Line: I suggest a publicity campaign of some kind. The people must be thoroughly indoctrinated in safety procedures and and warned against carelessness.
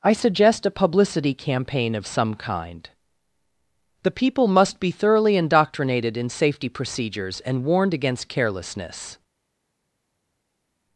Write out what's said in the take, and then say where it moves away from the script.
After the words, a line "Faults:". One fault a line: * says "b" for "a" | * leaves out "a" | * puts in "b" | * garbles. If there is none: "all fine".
I suggest a publicity campaign of some kind. The people must be thoroughly indoctrinated in safety procedures and warned against carelessness.
Faults:
* leaves out "and"